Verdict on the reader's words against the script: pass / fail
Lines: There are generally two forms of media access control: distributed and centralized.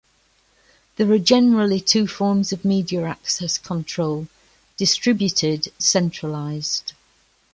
fail